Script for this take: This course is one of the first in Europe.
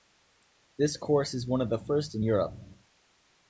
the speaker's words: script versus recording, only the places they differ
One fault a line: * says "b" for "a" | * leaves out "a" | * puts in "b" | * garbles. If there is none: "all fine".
all fine